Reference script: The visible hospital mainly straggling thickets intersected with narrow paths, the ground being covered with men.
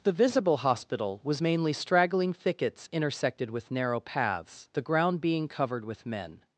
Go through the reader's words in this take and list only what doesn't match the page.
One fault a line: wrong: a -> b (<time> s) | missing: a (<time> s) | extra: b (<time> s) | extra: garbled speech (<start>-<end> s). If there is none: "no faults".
extra: was (1.2 s)